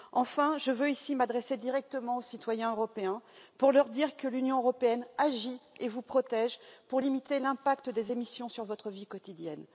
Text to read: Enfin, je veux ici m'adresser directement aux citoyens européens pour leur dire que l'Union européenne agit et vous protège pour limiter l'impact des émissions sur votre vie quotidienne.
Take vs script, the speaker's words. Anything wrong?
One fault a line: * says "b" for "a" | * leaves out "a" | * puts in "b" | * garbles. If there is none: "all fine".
all fine